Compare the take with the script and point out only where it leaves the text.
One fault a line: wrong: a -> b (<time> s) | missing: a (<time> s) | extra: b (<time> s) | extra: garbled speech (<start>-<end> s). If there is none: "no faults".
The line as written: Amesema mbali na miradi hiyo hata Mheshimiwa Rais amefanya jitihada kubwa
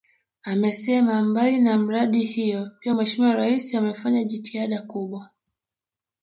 wrong: hata -> pia (2.8 s)